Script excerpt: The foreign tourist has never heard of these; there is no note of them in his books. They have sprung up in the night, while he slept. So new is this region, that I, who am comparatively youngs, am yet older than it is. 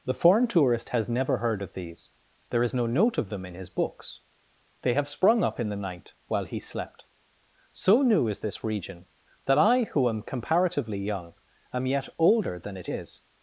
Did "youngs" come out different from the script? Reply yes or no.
yes